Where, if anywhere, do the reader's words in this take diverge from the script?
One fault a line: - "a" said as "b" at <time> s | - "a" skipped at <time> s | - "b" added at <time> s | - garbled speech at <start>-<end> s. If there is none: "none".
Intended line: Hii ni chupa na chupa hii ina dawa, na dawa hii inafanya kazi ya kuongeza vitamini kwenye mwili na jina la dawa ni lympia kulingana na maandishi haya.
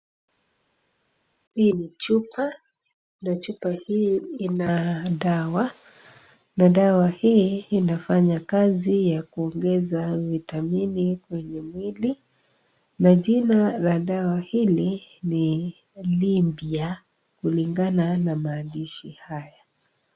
- "hili" added at 14.4 s